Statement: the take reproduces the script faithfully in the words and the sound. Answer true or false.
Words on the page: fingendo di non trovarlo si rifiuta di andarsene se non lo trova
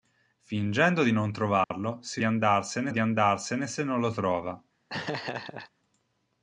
false